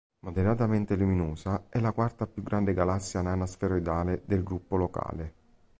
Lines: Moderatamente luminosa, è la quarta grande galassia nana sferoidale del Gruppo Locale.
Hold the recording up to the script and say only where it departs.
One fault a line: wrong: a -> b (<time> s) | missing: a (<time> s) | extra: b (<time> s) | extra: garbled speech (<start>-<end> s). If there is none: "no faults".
extra: più (2.2 s)